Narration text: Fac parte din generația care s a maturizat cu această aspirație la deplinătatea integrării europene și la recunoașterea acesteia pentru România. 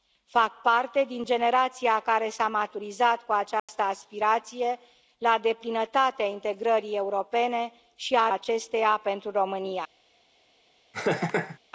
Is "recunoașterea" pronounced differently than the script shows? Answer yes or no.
yes